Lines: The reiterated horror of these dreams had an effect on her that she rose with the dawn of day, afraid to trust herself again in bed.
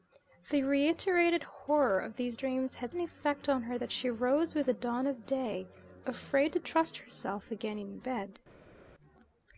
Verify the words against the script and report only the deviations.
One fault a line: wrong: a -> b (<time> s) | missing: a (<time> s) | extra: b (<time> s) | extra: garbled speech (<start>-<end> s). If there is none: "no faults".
no faults